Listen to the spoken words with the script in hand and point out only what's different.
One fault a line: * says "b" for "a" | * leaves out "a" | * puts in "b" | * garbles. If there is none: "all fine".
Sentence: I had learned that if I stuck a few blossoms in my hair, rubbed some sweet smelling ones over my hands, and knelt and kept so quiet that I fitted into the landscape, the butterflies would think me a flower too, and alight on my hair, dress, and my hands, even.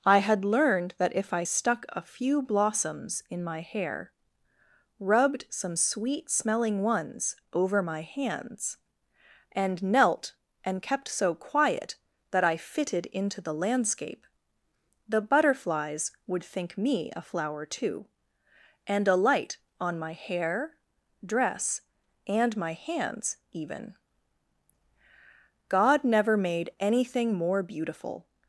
* puts in "God never made anything more beautiful"